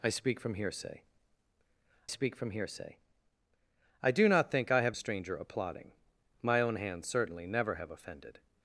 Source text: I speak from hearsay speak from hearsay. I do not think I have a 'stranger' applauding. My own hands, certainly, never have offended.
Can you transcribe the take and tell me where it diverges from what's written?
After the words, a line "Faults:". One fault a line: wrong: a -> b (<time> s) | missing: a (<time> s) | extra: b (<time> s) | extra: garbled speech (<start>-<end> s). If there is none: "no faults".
I speak from hearsay speak from hearsay. I do not think I have a 'stranger' applauding. My own hands, certainly, never have offended.
Faults:
no faults